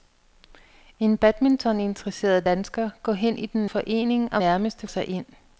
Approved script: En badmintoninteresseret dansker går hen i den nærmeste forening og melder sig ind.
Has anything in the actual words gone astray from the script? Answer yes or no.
yes